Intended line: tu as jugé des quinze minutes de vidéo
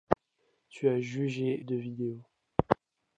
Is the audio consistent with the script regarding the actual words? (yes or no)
no